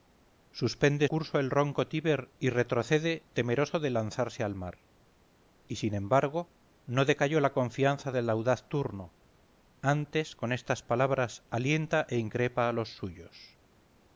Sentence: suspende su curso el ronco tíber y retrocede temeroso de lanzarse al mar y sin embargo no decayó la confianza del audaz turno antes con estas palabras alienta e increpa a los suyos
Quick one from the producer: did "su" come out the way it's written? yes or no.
no